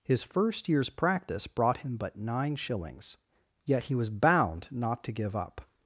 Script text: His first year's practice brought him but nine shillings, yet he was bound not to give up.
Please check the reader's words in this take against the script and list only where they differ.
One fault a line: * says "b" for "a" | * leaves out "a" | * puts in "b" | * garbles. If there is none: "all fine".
all fine